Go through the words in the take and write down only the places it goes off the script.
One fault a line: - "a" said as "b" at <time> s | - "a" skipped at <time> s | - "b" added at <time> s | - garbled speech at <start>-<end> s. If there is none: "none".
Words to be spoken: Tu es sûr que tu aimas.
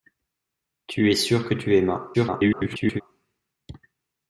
- garbled speech at 2.1-3.0 s